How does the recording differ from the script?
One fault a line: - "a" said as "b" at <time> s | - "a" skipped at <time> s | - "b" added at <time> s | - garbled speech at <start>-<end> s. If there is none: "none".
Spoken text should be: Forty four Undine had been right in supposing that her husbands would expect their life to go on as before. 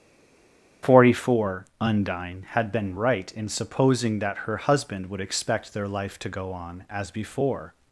- "husbands" said as "husband" at 4.6 s